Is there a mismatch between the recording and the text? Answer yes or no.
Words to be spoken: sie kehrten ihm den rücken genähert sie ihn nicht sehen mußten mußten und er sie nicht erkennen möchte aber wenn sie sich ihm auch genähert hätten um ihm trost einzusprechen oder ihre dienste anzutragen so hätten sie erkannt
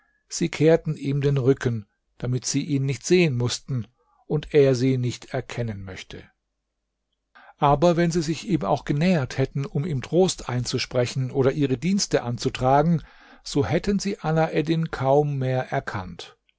yes